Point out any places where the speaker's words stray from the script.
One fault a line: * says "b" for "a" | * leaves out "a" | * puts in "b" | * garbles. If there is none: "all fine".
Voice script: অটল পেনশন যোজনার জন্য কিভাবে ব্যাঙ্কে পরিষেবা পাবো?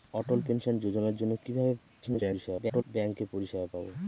* garbles